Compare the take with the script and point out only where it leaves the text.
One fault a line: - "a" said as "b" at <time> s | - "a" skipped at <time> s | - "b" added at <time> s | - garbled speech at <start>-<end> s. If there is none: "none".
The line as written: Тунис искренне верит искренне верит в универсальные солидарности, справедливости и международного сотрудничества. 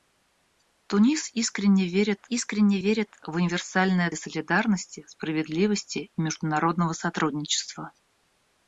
none